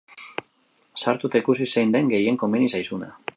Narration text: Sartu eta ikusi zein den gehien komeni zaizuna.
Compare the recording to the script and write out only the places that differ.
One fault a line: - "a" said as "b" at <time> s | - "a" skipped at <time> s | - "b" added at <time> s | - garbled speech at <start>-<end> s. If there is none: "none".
none